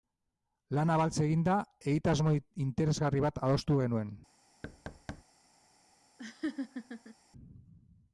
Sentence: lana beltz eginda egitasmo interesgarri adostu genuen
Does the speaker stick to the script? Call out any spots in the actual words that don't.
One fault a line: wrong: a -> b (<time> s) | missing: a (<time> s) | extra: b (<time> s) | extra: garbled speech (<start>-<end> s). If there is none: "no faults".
extra: bat (3.3 s)